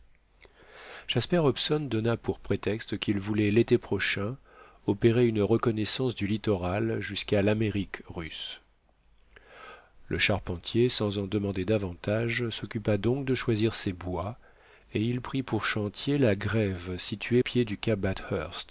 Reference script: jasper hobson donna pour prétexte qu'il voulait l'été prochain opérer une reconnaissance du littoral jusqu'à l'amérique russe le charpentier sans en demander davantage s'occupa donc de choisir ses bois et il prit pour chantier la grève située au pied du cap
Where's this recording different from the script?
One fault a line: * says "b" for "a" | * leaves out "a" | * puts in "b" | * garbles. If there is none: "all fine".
* leaves out "au"